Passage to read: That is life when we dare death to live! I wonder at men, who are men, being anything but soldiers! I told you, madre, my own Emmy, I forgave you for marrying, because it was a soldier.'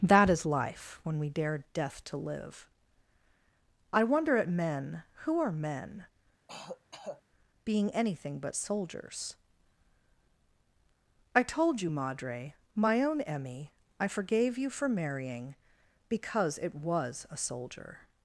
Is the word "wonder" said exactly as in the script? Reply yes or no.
yes